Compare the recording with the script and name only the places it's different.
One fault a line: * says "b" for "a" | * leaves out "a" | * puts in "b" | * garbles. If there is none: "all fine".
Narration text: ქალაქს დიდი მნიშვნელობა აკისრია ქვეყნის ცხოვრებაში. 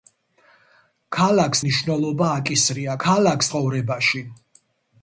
* leaves out "დიდი"
* says "ქალაქს" for "ქვეყნის"